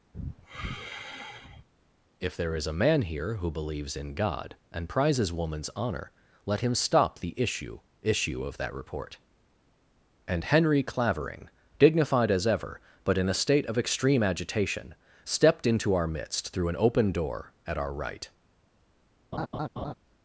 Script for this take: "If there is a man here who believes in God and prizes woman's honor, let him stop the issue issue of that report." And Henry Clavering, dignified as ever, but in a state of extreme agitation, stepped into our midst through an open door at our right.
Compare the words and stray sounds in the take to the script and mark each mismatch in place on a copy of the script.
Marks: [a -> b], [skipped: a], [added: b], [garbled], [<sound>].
[sigh] "If there is a man here who believes in God and prizes woman's honor, let him stop the issue issue of that report." And Henry Clavering, dignified as ever, but in a state of extreme agitation, stepped into our midst through an open door at our right. [laugh]